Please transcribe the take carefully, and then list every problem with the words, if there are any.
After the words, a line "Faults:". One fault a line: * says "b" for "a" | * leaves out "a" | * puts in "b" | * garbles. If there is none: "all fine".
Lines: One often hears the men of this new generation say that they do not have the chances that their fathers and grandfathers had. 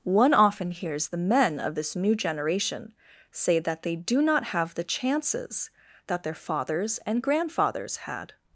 One often hears the men of this new generation say that they do not have the chances that their fathers and grandfathers had.
Faults:
all fine